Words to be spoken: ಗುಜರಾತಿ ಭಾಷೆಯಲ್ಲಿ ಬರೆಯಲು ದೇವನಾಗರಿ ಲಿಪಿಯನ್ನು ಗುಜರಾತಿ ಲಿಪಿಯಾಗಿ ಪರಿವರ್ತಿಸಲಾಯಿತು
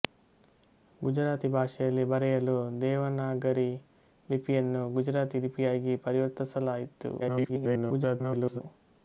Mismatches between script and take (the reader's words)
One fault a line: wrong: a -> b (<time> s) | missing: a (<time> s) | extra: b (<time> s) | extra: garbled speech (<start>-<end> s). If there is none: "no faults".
extra: garbled speech (7.2-8.6 s)